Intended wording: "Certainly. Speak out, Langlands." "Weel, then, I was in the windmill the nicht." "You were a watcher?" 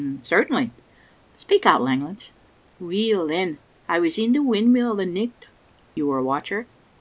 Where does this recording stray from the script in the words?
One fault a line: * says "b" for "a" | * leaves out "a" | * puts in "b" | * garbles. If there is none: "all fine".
all fine